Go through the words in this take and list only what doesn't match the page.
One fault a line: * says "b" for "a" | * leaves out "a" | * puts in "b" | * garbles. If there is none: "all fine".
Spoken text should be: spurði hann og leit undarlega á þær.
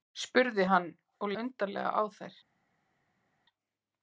* leaves out "leit"